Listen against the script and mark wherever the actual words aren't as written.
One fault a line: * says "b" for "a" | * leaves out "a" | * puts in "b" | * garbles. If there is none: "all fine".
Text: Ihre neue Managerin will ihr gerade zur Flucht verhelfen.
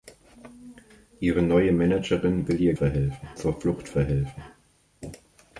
* says "verhelfen" for "gerade"